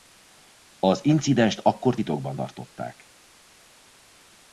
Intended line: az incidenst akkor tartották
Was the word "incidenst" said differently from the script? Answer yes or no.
no